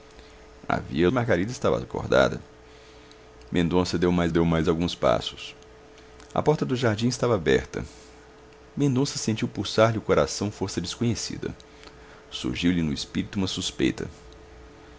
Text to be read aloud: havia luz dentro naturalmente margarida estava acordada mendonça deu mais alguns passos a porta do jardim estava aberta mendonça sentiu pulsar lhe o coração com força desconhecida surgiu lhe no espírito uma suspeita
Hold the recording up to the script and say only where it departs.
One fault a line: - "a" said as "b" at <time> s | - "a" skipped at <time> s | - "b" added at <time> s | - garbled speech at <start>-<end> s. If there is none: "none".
- "luz dentro naturalmente" skipped at 1.1 s
- "deu mais" added at 4.3 s
- "com" skipped at 10.5 s